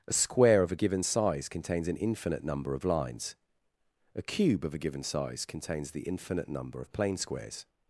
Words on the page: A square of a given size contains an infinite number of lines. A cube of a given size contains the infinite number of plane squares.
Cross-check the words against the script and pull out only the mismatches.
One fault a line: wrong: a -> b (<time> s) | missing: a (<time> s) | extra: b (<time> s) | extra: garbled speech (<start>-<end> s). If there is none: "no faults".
no faults